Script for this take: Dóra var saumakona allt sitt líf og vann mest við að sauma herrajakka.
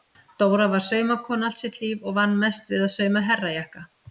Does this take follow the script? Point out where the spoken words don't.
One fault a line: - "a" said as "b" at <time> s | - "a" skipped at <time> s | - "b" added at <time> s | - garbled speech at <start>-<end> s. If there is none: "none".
none